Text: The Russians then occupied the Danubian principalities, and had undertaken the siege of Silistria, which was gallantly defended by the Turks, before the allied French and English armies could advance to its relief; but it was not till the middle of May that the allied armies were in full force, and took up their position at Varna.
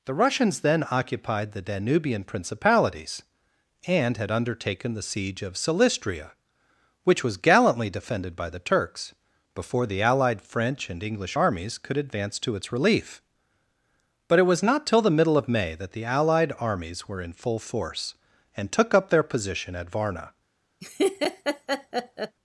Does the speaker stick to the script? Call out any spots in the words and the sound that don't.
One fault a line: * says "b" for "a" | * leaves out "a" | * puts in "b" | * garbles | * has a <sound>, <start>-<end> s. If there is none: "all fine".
* has a laugh, 20.8-22.4 s